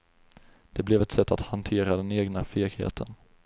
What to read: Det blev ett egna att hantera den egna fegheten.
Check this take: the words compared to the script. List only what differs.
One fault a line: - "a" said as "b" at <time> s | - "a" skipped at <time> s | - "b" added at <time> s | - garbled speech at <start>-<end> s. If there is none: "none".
- "egna" said as "sätt" at 1.1 s